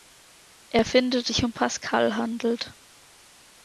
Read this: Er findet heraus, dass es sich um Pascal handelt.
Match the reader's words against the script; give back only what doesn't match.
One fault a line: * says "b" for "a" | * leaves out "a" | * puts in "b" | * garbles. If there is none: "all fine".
* leaves out "heraus dass es"